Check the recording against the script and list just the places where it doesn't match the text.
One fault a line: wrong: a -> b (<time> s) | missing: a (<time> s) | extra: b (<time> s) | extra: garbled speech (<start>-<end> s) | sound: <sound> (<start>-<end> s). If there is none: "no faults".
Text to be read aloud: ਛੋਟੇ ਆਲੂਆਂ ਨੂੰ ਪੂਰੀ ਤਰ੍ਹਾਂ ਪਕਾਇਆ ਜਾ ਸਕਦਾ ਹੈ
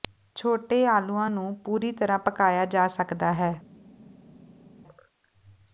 no faults